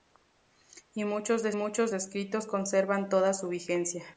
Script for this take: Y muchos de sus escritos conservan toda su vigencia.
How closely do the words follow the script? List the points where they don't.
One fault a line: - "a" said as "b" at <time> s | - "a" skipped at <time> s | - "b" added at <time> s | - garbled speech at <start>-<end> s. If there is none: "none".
- "sus" said as "muchos" at 1.5 s